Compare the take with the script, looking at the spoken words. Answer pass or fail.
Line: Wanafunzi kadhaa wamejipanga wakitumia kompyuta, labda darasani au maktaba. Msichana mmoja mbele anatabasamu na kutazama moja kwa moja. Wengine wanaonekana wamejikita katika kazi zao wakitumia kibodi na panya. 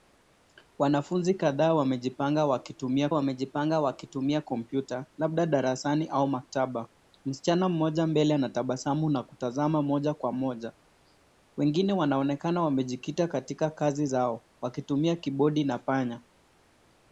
fail